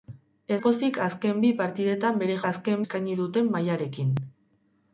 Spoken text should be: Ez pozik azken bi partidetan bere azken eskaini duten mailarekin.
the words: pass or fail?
pass